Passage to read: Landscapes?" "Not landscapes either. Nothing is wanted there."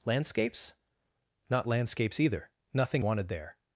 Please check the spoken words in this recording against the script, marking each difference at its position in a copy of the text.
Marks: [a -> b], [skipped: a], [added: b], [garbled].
Landscapes?" "Not landscapes either. Nothing [skipped: is] wanted there."